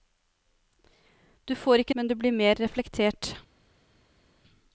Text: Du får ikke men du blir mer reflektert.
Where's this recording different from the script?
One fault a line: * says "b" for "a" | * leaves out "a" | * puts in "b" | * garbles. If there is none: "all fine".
all fine